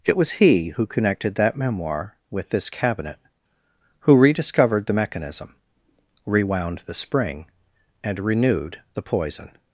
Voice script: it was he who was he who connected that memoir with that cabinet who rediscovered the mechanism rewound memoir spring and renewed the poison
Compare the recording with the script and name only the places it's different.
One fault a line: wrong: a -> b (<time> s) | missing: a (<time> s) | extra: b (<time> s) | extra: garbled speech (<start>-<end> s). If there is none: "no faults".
missing: was he who (0.9 s)
wrong: that -> this (2.5 s)
wrong: memoir -> the (6.8 s)